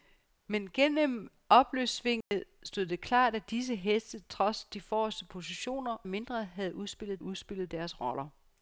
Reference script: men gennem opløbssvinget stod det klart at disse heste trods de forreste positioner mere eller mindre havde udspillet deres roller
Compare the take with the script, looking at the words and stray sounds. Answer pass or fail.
fail